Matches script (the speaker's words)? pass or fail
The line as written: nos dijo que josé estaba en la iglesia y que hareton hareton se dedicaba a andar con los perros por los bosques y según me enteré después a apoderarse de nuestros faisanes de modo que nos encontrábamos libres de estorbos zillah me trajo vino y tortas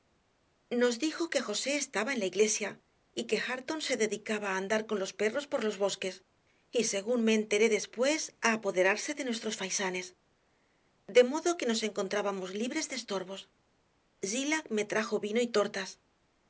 fail